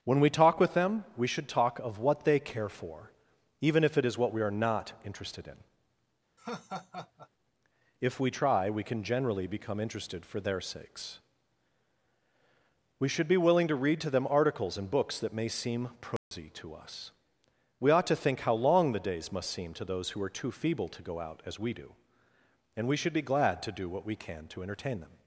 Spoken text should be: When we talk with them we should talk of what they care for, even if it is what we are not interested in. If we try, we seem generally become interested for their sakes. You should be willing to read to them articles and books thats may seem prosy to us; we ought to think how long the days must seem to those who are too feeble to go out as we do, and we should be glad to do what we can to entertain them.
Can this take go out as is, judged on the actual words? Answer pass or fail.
fail